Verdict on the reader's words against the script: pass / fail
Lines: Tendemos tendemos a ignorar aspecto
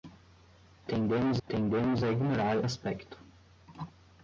pass